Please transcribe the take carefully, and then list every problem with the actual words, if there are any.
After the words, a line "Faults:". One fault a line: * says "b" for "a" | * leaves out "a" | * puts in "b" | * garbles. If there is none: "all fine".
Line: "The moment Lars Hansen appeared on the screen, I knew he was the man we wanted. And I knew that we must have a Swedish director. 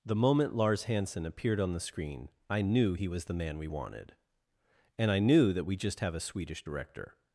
"The moment Lars Hansen appeared on the screen, I knew he was the man we wanted. And I knew that we just have a Swedish director.
Faults:
* says "just" for "must"